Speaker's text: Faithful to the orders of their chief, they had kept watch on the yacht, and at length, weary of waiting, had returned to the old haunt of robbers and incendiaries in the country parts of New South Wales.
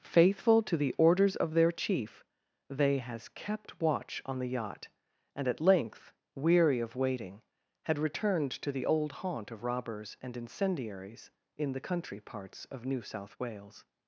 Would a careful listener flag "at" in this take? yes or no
no